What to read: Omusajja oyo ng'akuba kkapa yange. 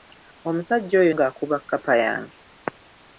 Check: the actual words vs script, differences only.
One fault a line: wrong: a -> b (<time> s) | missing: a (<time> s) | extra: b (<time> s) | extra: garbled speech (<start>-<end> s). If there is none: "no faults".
no faults